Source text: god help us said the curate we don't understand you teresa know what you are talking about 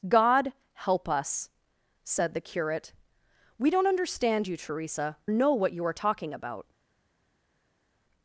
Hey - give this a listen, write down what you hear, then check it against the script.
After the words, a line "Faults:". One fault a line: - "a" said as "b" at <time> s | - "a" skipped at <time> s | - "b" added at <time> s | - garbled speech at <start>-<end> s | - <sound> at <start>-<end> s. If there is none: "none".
god help us said the curate we don't understand you teresa know what you are talking about
Faults:
none